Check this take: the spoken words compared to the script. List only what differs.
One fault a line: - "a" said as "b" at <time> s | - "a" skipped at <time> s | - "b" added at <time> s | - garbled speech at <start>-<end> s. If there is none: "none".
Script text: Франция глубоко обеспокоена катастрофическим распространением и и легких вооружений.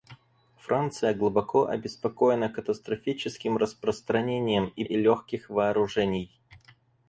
none